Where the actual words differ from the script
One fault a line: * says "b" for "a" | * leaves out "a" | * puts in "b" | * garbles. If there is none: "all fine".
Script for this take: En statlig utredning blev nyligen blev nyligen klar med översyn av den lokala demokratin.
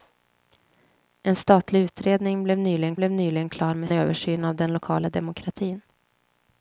all fine